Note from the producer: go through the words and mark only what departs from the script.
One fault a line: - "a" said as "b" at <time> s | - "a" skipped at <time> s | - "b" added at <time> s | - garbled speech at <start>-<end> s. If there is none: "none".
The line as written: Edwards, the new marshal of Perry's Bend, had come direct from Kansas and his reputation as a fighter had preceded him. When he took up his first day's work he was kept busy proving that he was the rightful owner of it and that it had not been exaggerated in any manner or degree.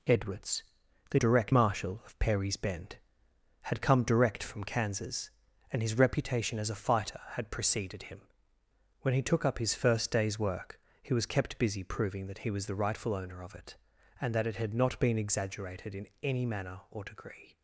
- "new" said as "direct" at 1.1 s